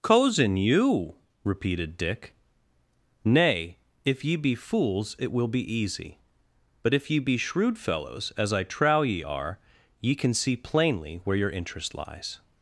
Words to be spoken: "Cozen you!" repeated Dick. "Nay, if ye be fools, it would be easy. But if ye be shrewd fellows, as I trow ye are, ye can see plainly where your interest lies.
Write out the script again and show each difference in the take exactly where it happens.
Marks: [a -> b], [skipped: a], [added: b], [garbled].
"Cozen you!" repeated Dick. "Nay, if ye be fools, it [would -> will] be easy. But if ye be shrewd fellows, as I trow ye are, ye can see plainly where your interest lies.